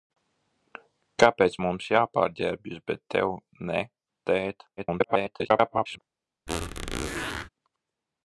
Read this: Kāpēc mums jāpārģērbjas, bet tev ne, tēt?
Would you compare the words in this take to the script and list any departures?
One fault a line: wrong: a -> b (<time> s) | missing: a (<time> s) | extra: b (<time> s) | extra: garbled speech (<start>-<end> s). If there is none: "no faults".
extra: garbled speech (4.8-6.0 s)